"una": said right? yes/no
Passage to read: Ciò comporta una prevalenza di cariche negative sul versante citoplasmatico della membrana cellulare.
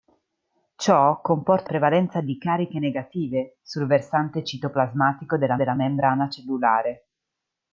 no